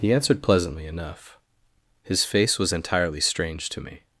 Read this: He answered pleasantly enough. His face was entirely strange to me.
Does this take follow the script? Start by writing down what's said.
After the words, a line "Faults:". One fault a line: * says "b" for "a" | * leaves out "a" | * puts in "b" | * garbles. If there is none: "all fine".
He answered pleasantly enough. His face was entirely strange to me.
Faults:
all fine